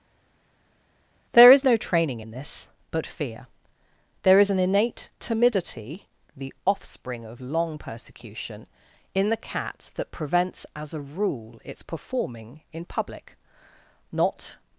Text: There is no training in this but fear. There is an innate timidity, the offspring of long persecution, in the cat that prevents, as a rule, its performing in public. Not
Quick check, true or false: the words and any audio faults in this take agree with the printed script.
true